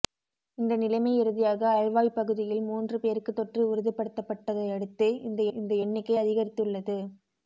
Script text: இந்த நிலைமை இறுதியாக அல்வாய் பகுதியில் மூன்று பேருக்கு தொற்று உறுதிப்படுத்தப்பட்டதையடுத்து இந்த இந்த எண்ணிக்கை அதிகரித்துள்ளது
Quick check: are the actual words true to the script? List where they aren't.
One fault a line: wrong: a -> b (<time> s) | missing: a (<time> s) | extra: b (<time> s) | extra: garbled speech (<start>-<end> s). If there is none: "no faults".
no faults